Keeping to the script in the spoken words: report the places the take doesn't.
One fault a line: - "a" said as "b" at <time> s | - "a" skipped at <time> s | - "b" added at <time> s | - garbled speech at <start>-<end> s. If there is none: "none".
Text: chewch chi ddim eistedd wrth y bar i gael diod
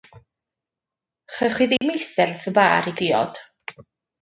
- "gael" skipped at 3.0 s